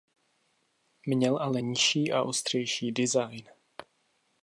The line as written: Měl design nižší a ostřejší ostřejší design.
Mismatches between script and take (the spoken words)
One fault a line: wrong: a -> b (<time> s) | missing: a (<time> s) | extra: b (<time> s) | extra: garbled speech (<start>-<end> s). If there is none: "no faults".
wrong: design -> ale (1.4 s)
missing: ostřejší (2.9 s)